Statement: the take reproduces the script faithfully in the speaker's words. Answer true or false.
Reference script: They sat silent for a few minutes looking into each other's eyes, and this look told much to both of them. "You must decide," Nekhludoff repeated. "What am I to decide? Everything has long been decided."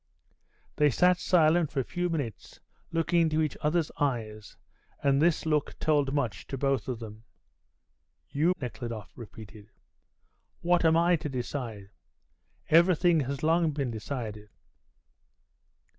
false